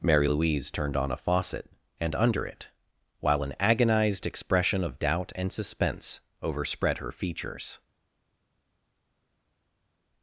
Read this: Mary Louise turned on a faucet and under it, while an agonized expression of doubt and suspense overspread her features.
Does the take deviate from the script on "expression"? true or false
false